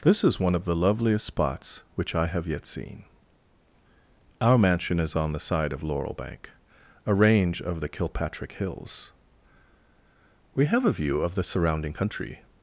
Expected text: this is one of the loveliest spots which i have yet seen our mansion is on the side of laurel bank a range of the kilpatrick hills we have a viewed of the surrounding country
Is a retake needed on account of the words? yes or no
yes